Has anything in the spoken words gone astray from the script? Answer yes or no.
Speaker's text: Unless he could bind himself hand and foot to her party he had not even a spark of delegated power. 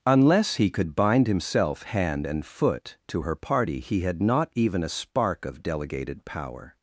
no